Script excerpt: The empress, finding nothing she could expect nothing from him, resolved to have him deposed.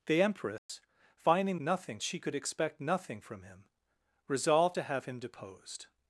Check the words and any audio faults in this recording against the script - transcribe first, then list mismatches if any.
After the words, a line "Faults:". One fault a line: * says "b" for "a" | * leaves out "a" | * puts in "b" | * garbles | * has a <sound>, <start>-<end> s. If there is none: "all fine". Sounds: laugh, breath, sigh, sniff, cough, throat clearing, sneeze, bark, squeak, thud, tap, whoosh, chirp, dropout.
The empress, finding nothing she could expect nothing from him, resolved to have him deposed.
Faults:
* has a dropout, 0.6-0.7 s